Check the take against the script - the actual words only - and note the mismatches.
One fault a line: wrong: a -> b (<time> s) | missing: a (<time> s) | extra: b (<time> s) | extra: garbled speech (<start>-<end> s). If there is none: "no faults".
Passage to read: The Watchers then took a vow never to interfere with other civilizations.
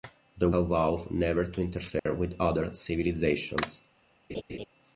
missing: Watchers then took (0.5 s)